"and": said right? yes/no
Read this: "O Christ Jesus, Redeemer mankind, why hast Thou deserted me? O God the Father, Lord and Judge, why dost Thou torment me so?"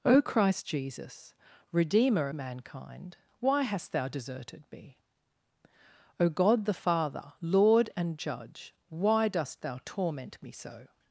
yes